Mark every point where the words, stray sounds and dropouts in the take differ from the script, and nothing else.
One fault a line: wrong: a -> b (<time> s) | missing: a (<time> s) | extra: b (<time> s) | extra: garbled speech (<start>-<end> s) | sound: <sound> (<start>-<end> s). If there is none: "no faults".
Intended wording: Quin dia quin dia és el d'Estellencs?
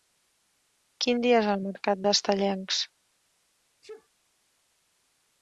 missing: quin dia (1.4 s)
extra: mercat (1.6 s)
sound: sneeze (3.8-4.1 s)